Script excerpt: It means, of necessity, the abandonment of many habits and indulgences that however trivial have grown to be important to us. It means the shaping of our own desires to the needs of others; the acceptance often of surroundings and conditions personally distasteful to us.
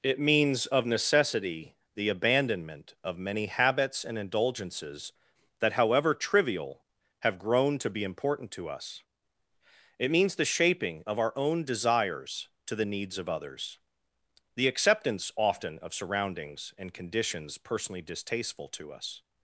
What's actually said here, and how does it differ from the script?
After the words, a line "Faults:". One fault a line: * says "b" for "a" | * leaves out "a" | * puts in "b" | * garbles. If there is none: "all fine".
It means, of necessity, the abandonment of many habits and indulgences that however trivial have grown to be important to us. It means the shaping of our own desires to the needs of others; the acceptance often of surroundings and conditions personally distasteful to us.
Faults:
all fine